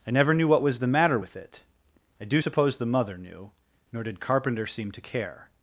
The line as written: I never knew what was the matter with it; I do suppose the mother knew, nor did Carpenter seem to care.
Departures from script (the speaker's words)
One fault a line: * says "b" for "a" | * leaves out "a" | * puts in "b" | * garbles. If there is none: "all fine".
all fine